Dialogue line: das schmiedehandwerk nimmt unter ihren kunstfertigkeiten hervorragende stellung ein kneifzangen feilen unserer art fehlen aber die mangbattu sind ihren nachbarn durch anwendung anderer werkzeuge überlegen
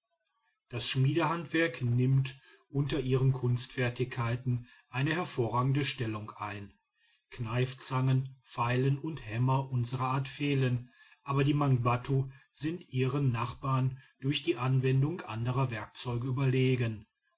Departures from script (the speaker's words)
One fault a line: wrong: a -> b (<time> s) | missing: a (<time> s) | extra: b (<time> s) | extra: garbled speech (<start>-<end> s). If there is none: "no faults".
extra: eine (4.9 s)
extra: und hämmer (9.0 s)
extra: die (14.4 s)